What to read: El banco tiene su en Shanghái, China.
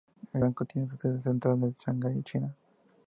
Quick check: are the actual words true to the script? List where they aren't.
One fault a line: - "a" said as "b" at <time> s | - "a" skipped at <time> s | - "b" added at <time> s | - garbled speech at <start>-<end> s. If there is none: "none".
- "sede central" added at 1.0 s